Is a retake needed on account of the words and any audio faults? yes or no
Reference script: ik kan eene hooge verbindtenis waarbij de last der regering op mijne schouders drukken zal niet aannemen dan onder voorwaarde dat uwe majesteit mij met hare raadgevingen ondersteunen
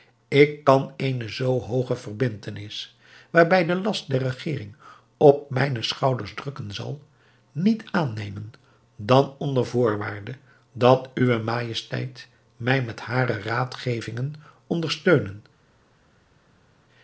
yes